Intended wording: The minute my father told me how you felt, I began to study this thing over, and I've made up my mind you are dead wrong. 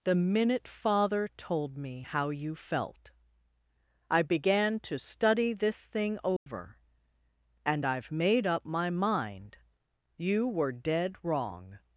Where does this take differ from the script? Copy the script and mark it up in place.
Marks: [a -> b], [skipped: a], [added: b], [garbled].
The minute [skipped: my] father told me how you felt, I began to study this thing over, and I've made up my mind you [are -> were] dead wrong.